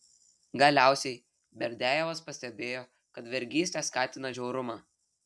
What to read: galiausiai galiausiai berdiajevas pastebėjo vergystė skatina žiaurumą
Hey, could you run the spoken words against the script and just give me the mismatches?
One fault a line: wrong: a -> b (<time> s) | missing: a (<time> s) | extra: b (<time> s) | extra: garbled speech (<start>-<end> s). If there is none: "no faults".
missing: galiausiai (1.2 s)
extra: kad (3.2 s)